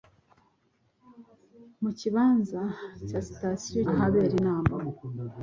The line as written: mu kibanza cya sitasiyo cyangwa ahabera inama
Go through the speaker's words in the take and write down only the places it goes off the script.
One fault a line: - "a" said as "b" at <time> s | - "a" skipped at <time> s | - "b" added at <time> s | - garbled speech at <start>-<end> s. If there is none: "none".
- "cyangwa" skipped at 3.8 s